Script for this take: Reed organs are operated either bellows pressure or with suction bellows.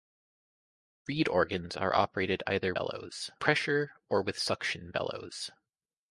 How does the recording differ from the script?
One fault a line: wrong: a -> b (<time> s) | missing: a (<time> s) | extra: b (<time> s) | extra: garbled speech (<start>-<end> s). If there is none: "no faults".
no faults